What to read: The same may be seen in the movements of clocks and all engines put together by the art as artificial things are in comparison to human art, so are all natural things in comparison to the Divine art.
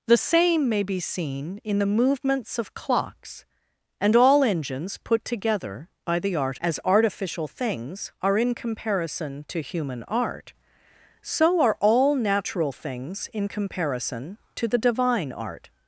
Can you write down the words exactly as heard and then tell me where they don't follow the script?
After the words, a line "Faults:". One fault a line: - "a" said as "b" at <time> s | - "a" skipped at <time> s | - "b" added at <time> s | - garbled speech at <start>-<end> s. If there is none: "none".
The same may be seen in the movements of clocks and all engines put together by the art as artificial things are in comparison to human art, so are all natural things in comparison to the Divine art.
Faults:
none